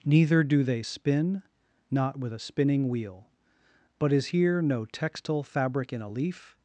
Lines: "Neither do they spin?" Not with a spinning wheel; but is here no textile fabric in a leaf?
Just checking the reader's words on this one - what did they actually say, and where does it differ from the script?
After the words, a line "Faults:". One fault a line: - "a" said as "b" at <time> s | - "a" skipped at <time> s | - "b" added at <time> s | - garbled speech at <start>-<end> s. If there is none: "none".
"Neither do they spin?" Not with a spinning wheel; but is here no textile fabric in a leaf?
Faults:
none